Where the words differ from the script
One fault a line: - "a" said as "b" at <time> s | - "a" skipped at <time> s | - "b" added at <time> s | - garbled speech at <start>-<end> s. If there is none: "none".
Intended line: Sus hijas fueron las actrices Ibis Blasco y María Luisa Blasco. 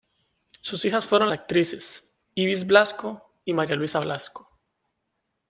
- "las" skipped at 1.3 s